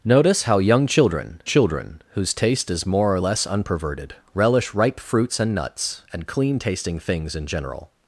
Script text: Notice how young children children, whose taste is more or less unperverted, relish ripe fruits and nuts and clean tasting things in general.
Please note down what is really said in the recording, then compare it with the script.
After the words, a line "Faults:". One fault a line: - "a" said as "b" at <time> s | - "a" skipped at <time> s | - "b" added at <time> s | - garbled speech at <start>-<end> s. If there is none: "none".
Notice how young children children, whose taste is more or less unperverted, relish ripe fruits and nuts and clean tasting things in general.
Faults:
none